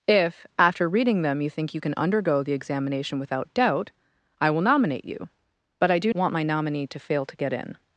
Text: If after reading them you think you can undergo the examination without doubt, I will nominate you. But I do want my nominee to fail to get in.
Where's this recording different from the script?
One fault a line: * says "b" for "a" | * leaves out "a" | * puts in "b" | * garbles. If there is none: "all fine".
all fine